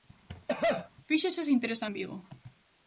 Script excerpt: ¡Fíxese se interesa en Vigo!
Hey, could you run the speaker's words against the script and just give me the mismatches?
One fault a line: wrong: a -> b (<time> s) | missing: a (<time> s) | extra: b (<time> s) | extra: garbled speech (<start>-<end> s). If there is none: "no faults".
no faults